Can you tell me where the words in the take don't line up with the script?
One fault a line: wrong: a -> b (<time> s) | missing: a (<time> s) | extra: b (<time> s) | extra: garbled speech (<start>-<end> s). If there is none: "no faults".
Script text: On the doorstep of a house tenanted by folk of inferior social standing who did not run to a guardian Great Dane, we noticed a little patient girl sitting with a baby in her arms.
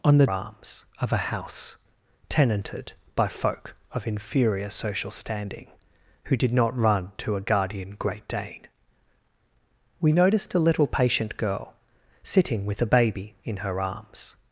wrong: doorstep -> arms (0.3 s)